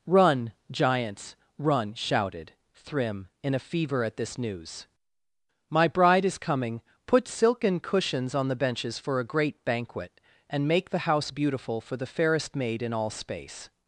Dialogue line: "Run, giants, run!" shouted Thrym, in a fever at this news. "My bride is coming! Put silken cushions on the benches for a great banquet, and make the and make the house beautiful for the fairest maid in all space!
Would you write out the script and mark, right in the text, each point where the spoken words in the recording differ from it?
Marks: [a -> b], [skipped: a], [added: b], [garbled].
"Run, giants, run!" shouted Thrym, in a fever at this news. "My bride is coming! Put silken cushions on the benches for a great banquet, and make the [skipped: and make the] house beautiful for the fairest maid in all space!